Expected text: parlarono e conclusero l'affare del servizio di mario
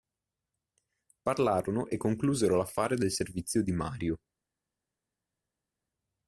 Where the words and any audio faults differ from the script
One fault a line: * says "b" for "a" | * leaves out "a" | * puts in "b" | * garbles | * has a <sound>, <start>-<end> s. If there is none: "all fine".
all fine